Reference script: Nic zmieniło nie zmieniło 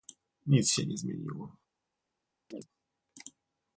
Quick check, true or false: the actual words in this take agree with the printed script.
false